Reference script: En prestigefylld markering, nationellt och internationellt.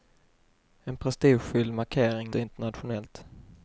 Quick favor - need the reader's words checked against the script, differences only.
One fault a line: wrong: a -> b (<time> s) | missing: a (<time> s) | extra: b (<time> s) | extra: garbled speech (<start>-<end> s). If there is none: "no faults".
missing: nationellt (2.3 s)